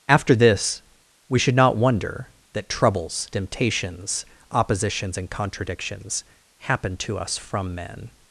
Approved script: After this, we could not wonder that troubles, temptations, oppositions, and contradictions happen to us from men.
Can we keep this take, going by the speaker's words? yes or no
no